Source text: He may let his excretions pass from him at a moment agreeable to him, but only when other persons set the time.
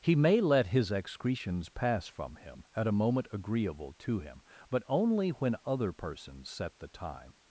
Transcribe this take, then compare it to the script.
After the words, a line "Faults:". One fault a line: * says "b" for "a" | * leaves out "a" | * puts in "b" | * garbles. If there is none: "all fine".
He may let his excretions pass from him at a moment agreeable to him, but only when other persons set the time.
Faults:
all fine